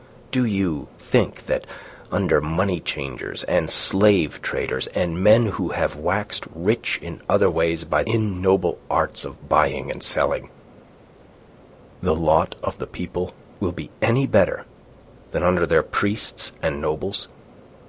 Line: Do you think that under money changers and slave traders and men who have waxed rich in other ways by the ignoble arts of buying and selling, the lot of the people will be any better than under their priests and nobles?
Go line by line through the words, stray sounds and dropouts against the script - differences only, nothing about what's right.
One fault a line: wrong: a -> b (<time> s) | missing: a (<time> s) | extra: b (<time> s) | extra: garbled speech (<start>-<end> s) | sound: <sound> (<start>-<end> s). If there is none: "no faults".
missing: the (8.0 s)